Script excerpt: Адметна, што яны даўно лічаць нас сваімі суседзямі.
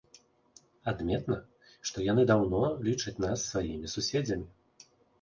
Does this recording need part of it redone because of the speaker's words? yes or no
no